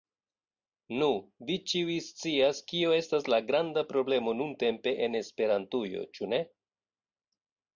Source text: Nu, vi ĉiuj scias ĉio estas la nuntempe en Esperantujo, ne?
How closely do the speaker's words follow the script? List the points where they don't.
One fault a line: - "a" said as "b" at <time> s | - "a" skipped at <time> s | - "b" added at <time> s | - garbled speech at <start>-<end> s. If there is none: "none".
- "ĉio" said as "kio" at 2.7 s
- "granda problemo" added at 3.5 s
- "ĉu" added at 6.2 s